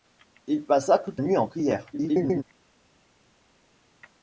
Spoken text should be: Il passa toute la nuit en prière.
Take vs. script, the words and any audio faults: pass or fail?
fail